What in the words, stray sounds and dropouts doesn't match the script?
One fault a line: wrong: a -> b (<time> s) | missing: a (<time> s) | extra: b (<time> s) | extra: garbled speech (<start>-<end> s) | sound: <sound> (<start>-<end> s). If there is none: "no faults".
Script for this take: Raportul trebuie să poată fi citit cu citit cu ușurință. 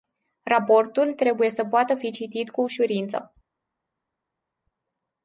missing: citit cu (2.6 s)